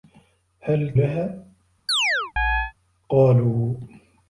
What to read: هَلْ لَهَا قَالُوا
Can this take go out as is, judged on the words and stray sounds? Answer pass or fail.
fail